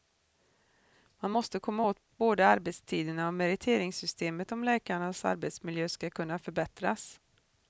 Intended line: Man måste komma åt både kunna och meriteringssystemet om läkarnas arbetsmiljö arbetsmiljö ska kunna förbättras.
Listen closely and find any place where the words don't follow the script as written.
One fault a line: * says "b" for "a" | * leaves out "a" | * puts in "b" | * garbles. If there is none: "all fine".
* says "arbetstiderna" for "kunna"
* leaves out "arbetsmiljö"